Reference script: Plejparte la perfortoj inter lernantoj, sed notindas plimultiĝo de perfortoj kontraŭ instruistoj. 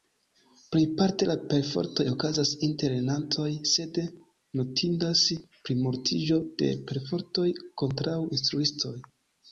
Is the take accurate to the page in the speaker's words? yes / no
no